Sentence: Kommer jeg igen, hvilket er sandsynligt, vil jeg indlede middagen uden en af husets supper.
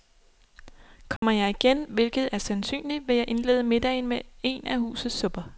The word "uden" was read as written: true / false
false